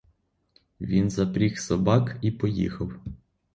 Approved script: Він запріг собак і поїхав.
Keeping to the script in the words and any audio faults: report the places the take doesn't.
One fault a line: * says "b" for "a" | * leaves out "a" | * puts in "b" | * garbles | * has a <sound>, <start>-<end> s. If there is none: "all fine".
all fine